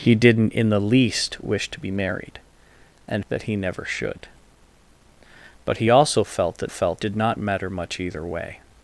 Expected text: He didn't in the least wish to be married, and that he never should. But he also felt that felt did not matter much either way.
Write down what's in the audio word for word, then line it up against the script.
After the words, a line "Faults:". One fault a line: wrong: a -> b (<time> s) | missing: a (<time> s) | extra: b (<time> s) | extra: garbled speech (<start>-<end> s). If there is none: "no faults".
He didn't in the least wish to be married, and that he never should. But he also felt that felt did not matter much either way.
Faults:
no faults